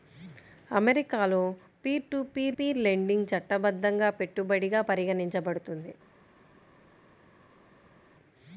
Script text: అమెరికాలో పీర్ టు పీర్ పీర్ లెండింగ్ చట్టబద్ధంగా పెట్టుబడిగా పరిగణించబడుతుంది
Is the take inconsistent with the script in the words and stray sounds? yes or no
no